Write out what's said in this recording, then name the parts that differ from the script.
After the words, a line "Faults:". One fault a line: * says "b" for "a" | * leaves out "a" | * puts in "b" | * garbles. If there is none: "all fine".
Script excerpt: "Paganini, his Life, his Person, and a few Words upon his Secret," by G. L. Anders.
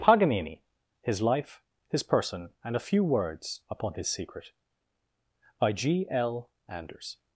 "Paganini, his Life, his Person, and a few Words upon his Secret," by G. L. Anders.
Faults:
all fine